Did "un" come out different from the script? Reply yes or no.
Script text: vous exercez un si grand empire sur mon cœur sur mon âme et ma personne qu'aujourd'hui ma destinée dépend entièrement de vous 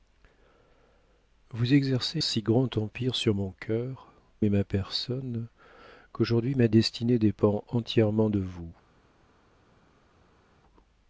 yes